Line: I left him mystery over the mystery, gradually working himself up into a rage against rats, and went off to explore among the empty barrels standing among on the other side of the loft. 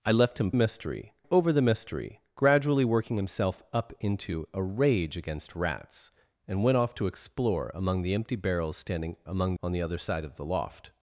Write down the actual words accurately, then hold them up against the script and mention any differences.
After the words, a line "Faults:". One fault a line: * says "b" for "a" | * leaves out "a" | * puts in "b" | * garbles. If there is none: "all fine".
I left him mystery over the mystery, gradually working himself up into a rage against rats, and went off to explore among the empty barrels standing among on the other side of the loft.
Faults:
all fine